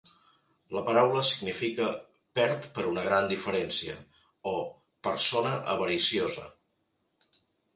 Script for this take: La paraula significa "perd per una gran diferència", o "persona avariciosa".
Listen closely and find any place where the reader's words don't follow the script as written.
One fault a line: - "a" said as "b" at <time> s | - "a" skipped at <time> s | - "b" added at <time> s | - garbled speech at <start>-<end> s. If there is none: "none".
none